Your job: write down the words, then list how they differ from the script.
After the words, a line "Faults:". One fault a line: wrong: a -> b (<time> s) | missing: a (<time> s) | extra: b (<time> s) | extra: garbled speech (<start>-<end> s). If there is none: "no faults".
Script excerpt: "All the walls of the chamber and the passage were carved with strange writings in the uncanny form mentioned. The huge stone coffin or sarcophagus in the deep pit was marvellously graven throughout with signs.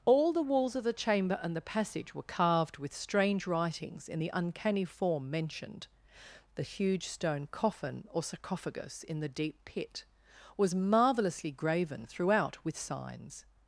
"All the walls of the chamber and the passage were carved with strange writings in the uncanny form mentioned. The huge stone coffin or sarcophagus in the deep pit was marvellously graven throughout with signs.
Faults:
no faults